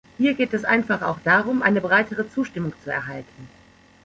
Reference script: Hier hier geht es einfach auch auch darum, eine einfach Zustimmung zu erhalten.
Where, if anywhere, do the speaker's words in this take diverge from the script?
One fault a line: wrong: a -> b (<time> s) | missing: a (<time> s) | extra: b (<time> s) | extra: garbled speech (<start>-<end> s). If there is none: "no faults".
missing: hier (0.3 s)
missing: auch (1.2 s)
wrong: einfach -> breitere (1.8 s)